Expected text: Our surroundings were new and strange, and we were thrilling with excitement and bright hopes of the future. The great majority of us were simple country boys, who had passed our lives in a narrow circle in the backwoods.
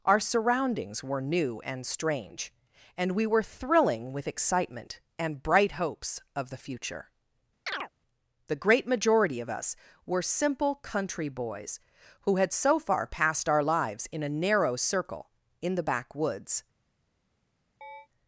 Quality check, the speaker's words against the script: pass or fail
fail